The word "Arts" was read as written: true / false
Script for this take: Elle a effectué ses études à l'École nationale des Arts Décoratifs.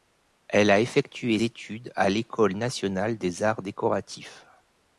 true